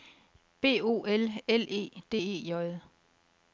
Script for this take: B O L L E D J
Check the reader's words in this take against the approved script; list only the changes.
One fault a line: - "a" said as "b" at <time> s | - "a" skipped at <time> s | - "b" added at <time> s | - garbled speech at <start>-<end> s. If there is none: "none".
- "E" added at 2.1 s